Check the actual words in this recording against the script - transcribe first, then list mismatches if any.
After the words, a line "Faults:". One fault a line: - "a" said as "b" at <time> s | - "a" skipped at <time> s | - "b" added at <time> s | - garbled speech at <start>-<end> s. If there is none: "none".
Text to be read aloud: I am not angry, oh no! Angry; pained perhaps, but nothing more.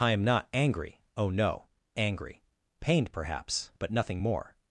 I am not angry, oh no! Angry; pained perhaps, but nothing more.
Faults:
none